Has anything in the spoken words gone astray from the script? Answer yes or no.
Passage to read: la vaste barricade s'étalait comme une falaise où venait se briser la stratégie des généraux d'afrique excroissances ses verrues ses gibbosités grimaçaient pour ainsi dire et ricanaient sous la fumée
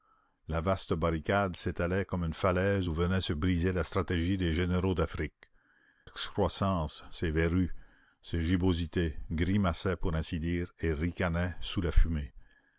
no